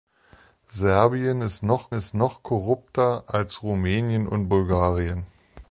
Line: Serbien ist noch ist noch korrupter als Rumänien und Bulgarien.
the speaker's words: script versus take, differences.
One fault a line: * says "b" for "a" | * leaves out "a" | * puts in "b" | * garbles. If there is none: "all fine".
all fine